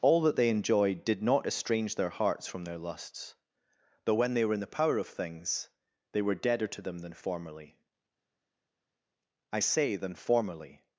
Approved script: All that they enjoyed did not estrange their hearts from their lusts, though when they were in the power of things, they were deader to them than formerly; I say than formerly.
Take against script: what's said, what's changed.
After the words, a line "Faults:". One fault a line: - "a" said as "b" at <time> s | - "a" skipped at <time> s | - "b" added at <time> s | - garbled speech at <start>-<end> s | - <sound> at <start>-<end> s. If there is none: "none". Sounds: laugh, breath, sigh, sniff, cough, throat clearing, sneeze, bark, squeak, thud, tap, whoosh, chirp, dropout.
All that they enjoyed did not estrange their hearts from their lusts, though when they were in the power of things, they were deader to them than formerly; I say than formerly.
Faults:
none